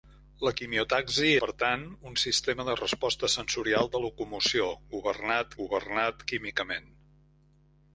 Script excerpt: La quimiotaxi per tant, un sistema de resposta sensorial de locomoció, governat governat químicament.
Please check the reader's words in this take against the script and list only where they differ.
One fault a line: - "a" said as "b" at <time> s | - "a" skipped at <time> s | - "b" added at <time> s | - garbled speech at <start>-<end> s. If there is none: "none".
none